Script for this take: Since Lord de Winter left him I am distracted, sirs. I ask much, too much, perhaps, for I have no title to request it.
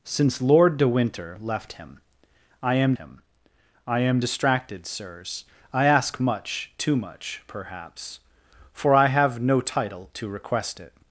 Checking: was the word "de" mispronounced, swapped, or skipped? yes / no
no